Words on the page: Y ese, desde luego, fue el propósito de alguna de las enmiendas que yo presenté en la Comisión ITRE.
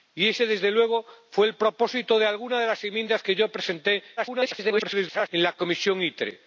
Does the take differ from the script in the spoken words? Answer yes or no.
yes